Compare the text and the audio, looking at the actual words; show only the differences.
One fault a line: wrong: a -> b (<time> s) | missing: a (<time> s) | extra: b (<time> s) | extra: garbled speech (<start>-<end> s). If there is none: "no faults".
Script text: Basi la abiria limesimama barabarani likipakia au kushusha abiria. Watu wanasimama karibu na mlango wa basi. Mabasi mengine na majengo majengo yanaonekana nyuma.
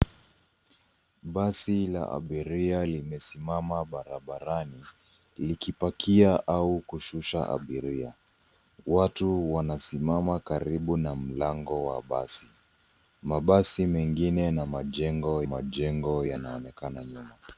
no faults